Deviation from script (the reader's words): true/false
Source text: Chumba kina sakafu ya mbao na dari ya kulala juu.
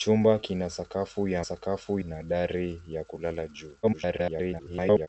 true